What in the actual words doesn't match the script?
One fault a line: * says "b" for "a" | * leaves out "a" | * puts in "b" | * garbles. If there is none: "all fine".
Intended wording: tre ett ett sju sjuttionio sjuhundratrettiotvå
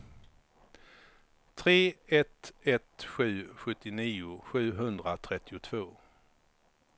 all fine